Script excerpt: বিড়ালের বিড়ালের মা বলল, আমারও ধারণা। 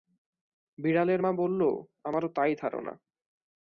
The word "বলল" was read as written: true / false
true